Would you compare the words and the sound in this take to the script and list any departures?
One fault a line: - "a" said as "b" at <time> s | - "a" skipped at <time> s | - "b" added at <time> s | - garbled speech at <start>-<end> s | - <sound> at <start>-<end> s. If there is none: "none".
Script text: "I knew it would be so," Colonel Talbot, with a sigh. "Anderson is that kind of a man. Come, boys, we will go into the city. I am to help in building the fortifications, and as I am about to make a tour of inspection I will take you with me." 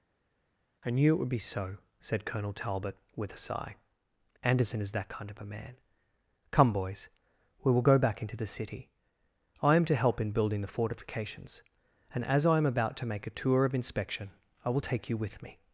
- "said" added at 2.0 s
- "back" added at 8.0 s